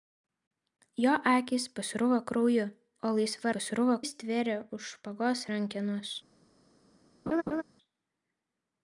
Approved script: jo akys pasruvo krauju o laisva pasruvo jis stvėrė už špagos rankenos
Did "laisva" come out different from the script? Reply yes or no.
no